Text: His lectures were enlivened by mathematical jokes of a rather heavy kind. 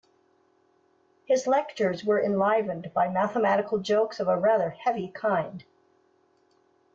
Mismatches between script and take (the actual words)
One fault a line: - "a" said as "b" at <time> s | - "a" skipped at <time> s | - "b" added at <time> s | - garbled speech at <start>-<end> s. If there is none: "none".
none